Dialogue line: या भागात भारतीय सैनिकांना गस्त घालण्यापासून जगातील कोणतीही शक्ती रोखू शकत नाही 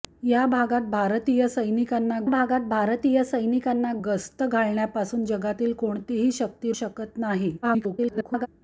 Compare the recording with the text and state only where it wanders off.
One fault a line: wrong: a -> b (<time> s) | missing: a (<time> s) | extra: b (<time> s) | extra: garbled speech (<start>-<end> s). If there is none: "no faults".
extra: भागात भारतीय सैनिकांना (2.3 s)
missing: रोखू (6.7 s)
extra: garbled speech (7.6-8.5 s)